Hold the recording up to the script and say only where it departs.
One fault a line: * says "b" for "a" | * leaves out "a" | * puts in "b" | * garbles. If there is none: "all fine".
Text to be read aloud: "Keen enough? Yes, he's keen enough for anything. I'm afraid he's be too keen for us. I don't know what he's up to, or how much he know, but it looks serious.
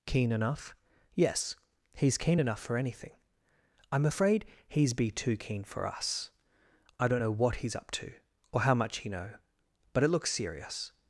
all fine